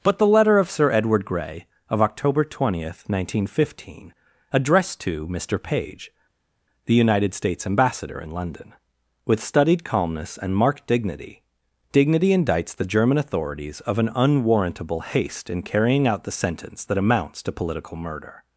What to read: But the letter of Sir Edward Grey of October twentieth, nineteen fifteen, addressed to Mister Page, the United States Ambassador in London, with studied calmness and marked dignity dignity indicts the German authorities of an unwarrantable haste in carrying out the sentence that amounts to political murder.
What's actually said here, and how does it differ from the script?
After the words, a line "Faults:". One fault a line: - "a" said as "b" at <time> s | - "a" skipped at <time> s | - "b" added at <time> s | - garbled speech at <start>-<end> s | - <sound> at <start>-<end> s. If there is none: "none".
But the letter of Sir Edward Grey of October twentieth, nineteen fifteen, addressed to Mister Page, the United States Ambassador in London, with studied calmness and marked dignity dignity indicts the German authorities of an unwarrantable haste in carrying out the sentence that amounts to political murder.
Faults:
none